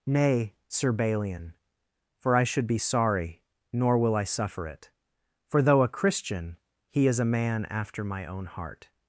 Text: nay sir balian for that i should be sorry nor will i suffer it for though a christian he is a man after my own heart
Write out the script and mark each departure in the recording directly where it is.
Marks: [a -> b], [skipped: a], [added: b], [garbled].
nay sir balian for [skipped: that] i should be sorry nor will i suffer it for though a christian he is a man after my own heart